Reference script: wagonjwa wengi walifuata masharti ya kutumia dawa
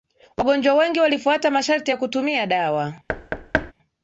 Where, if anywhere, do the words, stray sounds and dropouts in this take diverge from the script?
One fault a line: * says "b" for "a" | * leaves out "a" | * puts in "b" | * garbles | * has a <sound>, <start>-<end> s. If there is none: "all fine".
* has a thud, 3.1-3.7 s